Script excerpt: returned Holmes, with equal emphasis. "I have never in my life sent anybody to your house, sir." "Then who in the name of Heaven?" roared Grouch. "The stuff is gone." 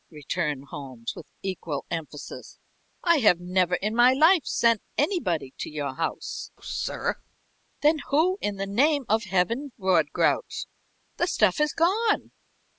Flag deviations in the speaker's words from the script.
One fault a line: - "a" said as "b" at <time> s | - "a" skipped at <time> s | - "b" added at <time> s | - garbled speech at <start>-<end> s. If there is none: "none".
none